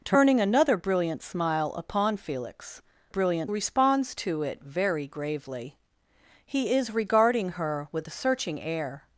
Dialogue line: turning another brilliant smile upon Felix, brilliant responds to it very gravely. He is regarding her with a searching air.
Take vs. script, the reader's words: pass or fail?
pass